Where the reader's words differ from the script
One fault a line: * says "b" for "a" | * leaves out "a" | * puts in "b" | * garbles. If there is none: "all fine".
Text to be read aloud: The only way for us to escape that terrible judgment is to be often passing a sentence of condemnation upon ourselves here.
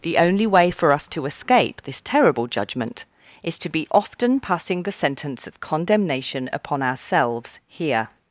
* says "this" for "that"
* says "the" for "a"